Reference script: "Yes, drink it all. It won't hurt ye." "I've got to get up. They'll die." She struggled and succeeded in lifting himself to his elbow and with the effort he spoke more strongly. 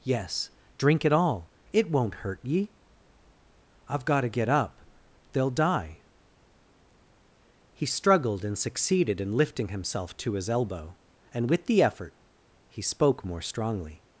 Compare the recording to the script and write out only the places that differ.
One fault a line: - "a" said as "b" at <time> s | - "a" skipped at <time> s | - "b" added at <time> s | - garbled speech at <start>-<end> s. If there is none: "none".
- "She" said as "He" at 7.7 s